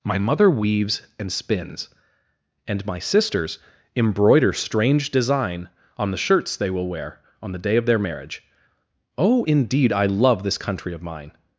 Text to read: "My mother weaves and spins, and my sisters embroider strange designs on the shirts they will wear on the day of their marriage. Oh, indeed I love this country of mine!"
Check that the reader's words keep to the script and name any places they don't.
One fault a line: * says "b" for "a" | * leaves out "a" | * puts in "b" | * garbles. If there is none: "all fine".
* says "design" for "designs"